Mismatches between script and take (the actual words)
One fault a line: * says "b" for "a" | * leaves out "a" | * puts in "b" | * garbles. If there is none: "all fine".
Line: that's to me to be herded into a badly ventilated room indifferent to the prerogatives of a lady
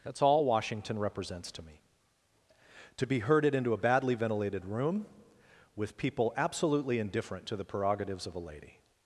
* puts in "all washington represents"
* puts in "with people absolutely"